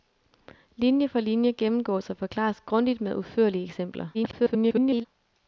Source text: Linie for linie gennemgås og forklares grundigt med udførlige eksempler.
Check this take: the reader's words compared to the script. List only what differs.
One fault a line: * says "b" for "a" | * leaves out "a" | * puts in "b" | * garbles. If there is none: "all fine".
* garbles